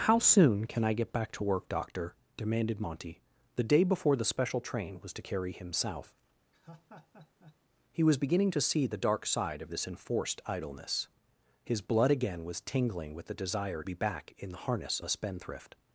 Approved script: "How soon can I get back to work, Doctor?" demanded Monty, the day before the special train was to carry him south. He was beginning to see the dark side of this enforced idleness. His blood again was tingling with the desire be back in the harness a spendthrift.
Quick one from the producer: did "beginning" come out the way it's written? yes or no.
yes